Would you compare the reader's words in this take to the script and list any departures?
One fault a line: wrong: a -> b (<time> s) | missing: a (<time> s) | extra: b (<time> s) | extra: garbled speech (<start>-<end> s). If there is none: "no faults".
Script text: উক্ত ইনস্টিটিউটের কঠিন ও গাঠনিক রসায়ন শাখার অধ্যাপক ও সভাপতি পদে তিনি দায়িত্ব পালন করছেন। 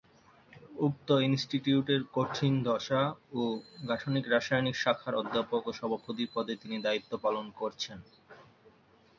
extra: দশা (2.6 s)